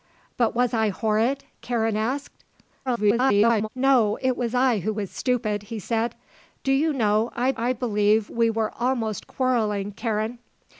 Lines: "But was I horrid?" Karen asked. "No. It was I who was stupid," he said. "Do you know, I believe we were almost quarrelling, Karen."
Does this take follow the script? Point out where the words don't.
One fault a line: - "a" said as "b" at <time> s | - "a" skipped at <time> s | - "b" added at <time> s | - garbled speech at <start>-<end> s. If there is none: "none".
- garbled speech at 2.9-3.7 s
- "I" added at 7.6 s